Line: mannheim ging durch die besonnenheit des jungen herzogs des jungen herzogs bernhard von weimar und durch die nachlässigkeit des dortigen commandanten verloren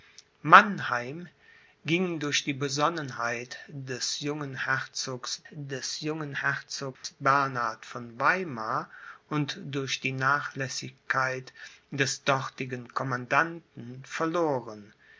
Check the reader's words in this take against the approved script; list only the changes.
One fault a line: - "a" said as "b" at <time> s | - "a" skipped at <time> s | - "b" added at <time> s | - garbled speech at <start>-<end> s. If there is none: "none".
none